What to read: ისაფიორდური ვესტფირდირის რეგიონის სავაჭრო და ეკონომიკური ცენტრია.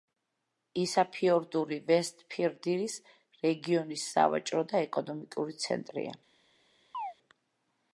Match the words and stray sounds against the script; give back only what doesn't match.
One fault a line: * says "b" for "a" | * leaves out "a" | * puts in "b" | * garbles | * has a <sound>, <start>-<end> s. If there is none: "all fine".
* has a chirp, 6.9-7.1 s